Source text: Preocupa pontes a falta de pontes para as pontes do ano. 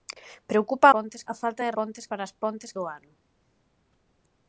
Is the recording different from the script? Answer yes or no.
no